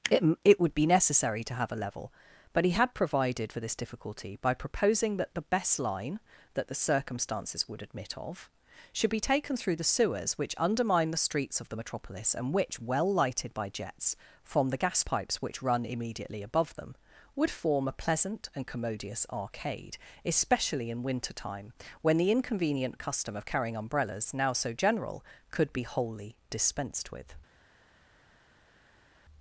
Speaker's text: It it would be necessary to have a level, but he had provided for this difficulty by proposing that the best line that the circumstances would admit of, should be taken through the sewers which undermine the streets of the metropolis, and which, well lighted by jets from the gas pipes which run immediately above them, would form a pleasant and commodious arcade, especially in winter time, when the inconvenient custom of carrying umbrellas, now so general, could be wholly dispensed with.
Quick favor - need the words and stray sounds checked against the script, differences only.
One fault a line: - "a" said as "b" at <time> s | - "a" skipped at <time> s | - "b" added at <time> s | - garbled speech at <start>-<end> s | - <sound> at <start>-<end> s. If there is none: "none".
none